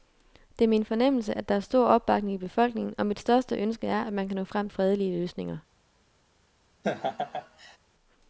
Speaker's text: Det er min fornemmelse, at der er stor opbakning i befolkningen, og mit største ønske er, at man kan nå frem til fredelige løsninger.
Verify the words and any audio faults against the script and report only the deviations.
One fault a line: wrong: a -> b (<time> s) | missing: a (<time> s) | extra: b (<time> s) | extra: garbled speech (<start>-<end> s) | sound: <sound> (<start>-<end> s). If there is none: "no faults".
missing: til (4.7 s)
sound: laugh (6.8-7.8 s)